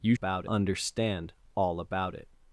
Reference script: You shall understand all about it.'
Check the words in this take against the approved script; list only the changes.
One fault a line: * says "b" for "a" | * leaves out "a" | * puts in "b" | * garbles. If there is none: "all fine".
* says "about" for "shall"